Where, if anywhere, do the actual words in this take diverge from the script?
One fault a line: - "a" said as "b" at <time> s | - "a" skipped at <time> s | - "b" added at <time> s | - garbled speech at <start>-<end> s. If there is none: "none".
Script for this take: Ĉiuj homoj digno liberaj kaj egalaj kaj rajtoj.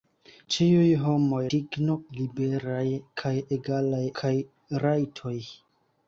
none